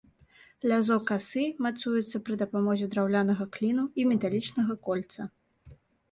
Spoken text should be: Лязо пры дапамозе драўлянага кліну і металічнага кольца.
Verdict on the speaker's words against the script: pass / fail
fail